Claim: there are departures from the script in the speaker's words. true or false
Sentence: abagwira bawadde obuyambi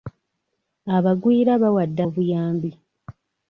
false